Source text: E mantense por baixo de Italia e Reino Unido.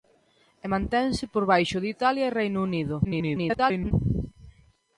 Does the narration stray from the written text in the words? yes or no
yes